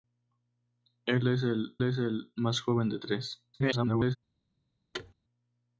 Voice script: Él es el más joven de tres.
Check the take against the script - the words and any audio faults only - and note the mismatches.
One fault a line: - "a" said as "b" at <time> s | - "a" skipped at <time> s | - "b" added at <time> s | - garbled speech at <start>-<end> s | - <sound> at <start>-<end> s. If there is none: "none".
- "es el" added at 1.8 s
- garbled speech at 3.5-4.2 s
- thud at 4.9-5.1 s